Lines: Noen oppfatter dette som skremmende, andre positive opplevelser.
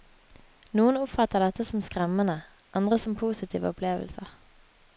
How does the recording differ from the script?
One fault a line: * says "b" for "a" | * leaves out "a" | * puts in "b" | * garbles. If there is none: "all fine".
* puts in "som"